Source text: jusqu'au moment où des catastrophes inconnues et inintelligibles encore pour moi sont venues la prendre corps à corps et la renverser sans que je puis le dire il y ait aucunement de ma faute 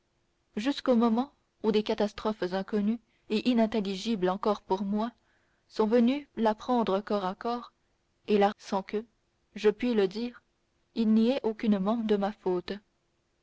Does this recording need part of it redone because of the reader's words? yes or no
yes